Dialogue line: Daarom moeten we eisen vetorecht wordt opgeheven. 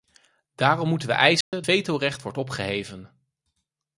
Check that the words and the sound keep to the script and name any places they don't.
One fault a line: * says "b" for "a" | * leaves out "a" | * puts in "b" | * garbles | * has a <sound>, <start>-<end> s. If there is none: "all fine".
* has a dropout, 1.4-1.5 s